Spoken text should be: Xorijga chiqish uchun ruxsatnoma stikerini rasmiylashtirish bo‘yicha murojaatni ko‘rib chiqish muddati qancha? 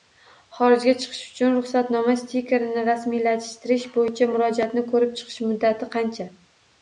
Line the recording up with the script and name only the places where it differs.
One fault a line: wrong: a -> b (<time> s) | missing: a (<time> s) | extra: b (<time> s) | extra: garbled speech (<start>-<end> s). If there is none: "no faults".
no faults